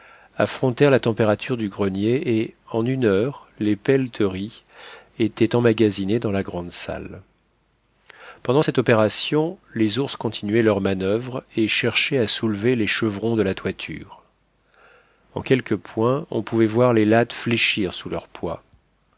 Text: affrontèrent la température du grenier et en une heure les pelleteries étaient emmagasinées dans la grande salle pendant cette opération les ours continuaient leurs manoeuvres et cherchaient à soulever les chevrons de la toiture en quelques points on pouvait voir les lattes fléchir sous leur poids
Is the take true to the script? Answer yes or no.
yes